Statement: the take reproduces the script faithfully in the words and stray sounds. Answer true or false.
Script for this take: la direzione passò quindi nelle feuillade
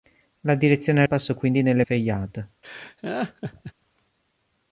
false